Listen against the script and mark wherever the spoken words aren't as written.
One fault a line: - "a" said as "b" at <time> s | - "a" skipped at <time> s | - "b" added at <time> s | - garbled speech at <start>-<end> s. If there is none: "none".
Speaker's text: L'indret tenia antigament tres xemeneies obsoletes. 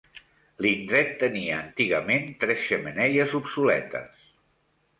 none